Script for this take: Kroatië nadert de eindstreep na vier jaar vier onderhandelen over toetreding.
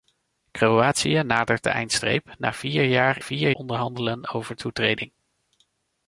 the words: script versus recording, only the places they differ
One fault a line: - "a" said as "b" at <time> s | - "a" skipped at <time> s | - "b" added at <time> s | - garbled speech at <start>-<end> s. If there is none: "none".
none